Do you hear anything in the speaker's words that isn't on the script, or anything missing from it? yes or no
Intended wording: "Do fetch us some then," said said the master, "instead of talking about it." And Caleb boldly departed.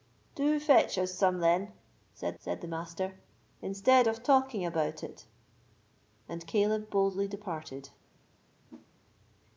no